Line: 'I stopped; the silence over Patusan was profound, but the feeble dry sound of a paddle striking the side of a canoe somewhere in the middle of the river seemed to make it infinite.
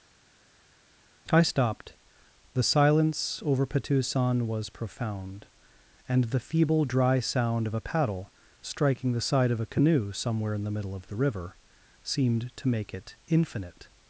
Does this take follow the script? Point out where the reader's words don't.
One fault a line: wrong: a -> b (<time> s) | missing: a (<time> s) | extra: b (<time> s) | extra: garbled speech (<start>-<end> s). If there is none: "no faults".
wrong: but -> and (6.1 s)